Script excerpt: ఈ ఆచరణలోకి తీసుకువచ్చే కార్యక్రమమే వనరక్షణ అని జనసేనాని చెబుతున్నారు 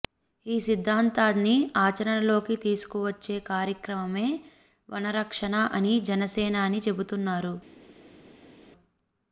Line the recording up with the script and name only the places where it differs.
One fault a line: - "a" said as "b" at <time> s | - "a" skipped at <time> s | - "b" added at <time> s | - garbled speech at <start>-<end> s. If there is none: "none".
- "సిద్ధాంతాన్ని" added at 0.6 s